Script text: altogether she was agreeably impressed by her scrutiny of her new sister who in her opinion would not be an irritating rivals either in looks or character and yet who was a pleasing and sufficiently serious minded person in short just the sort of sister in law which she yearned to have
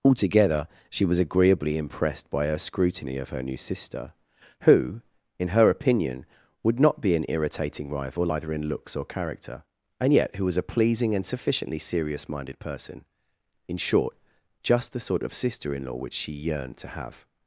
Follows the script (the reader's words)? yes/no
no